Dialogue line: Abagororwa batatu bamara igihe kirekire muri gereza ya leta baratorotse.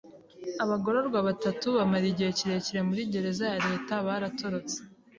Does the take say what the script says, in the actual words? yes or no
yes